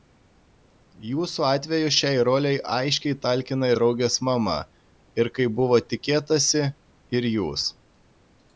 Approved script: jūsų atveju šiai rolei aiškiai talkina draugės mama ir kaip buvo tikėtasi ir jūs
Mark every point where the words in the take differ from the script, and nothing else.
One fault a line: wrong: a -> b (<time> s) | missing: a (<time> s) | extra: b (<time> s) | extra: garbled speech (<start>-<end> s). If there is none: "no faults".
no faults